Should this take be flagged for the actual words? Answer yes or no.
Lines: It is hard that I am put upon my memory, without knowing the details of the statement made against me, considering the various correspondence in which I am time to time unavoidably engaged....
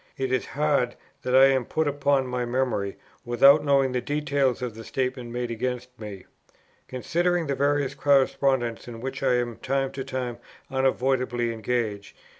no